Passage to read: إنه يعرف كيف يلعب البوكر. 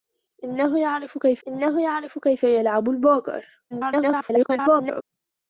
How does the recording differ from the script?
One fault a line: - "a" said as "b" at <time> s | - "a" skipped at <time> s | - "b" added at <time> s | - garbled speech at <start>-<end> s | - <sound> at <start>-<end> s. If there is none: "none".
- "إنه يعرف كيف" added at 1.5 s
- garbled speech at 3.7-5.0 s